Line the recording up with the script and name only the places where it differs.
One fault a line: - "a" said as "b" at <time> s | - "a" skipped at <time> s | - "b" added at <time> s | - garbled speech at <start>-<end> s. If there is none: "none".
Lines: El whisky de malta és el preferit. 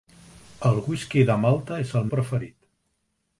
none